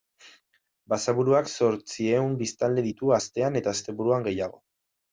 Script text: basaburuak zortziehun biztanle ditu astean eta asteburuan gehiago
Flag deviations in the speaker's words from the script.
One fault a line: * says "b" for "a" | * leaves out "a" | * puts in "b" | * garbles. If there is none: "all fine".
all fine